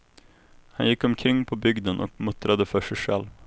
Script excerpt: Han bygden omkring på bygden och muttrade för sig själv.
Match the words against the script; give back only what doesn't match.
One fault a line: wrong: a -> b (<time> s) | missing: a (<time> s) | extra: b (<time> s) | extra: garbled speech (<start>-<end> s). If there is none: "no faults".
wrong: bygden -> gick (0.9 s)